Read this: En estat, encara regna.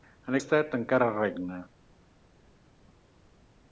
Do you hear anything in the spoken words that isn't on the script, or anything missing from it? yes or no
no